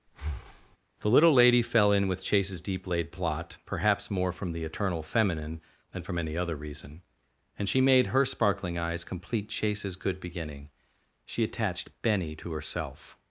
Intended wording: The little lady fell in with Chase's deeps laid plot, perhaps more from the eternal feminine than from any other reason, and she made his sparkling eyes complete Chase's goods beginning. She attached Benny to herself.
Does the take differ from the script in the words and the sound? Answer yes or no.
yes